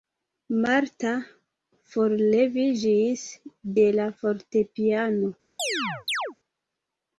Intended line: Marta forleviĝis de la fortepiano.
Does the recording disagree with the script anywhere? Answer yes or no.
no